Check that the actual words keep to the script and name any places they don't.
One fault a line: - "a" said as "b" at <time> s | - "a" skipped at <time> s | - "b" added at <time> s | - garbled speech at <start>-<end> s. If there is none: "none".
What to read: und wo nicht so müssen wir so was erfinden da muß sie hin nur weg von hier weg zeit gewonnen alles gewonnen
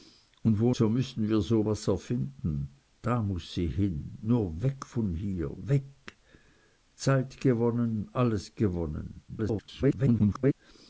- "nicht" skipped at 0.7 s
- garbled speech at 9.3-10.5 s